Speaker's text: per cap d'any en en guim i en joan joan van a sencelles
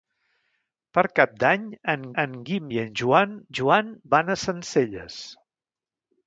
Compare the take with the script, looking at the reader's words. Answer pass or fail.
pass